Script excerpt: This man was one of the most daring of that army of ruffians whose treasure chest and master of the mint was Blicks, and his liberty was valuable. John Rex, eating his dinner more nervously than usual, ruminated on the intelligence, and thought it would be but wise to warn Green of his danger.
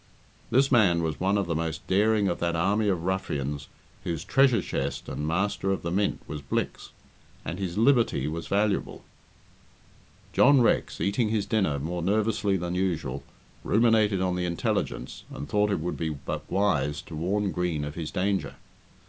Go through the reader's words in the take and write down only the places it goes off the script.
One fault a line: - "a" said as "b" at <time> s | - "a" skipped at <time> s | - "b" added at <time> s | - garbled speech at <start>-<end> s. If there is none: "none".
none